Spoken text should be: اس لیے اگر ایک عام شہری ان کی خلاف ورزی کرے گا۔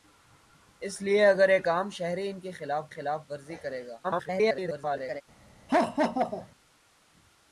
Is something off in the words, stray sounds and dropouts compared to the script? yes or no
yes